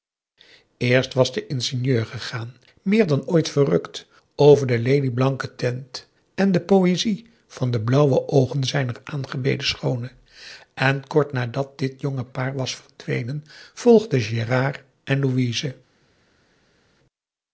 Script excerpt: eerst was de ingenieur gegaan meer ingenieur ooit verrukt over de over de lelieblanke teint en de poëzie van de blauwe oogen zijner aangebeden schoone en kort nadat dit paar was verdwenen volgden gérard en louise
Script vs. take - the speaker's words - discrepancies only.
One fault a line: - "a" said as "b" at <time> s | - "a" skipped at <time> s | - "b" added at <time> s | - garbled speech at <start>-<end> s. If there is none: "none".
- "ingenieur" said as "dan" at 3.1 s
- "over de" skipped at 4.8 s
- "jonge" added at 12.0 s